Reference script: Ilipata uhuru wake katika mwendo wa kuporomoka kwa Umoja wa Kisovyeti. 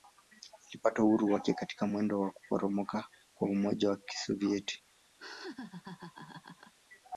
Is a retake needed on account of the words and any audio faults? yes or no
yes